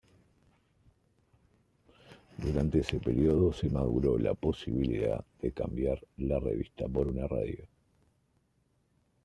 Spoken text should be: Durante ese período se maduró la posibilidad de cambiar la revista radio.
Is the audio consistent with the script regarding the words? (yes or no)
no